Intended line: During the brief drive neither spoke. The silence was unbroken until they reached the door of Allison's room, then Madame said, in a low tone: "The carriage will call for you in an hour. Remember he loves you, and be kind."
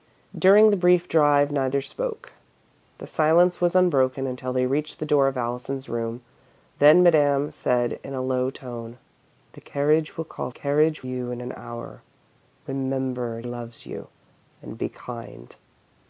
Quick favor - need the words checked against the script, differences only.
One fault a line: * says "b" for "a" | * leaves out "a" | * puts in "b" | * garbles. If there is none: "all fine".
* says "carriage" for "for"
* leaves out "he"